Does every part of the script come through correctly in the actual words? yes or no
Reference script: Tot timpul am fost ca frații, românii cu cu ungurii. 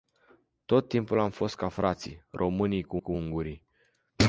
yes